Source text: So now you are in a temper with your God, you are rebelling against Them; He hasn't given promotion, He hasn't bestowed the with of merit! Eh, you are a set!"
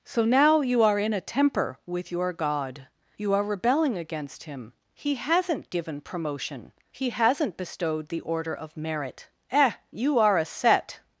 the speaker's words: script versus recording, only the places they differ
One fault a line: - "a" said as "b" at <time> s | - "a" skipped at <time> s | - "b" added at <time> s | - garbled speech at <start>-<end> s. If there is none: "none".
- "Them" said as "Him" at 4.4 s
- "with" said as "order" at 8.2 s